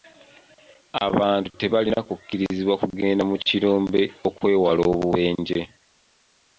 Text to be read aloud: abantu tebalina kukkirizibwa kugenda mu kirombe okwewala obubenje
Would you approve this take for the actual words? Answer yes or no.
yes